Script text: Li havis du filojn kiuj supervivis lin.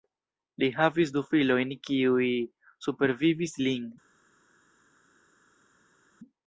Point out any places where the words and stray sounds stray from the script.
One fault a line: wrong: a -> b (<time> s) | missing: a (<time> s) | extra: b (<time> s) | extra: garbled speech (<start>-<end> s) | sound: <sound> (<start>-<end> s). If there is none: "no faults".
no faults